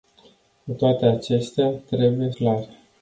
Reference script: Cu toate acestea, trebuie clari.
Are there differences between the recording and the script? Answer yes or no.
no